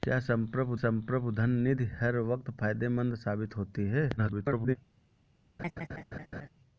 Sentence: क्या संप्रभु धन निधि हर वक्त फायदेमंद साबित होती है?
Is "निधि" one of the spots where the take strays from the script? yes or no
no